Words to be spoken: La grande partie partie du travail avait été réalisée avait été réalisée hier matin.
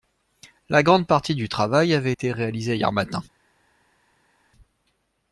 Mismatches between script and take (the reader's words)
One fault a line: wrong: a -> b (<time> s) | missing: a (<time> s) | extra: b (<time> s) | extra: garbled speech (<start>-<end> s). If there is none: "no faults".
missing: partie (1.4 s)
missing: avait été réalisée (2.8 s)